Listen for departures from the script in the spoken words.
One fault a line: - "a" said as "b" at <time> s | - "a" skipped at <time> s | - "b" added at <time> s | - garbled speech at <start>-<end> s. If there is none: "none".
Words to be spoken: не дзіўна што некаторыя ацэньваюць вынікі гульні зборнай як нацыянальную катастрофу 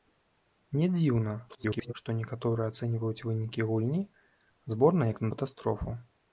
- garbled speech at 1.5-1.9 s
- "нацыянальную" skipped at 5.3 s